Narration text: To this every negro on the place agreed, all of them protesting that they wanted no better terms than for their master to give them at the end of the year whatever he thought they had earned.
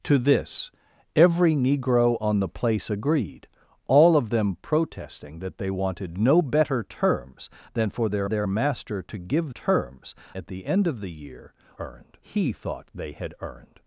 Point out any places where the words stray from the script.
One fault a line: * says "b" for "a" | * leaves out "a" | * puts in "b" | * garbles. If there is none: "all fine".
* puts in "their"
* says "terms" for "them"
* says "earned" for "whatever"